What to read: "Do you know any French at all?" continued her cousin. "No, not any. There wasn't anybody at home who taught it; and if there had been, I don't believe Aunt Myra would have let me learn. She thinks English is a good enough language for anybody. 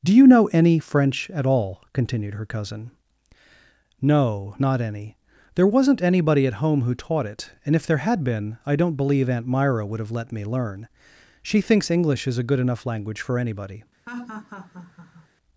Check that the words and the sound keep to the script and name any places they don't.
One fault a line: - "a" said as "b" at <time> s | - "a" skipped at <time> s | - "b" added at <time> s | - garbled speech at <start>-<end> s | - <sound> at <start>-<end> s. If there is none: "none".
- laugh at 14.1-15.3 s